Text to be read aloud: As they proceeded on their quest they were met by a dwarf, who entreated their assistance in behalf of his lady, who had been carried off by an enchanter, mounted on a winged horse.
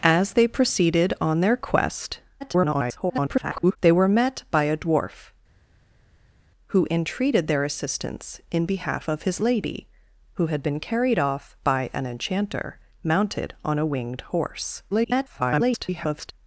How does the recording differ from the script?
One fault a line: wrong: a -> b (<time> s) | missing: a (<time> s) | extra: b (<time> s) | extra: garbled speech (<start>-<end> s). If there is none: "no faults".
extra: garbled speech (2.4-3.8 s)
extra: garbled speech (14.9-16.3 s)